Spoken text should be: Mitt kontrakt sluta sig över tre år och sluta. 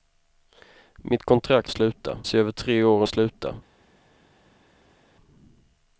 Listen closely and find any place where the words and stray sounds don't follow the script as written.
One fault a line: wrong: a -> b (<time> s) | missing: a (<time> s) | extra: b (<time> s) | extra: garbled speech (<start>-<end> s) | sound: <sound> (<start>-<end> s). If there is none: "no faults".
no faults